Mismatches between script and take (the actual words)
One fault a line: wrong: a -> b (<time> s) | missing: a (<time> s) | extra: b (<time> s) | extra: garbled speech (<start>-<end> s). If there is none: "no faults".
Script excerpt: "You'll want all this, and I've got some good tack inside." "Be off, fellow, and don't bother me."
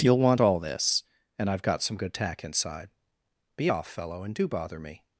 wrong: don't -> do (4.4 s)